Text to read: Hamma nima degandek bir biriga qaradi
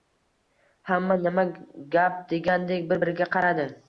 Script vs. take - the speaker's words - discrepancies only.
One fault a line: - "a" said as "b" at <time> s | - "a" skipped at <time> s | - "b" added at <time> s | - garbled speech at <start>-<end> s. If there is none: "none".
- "gap" added at 2.0 s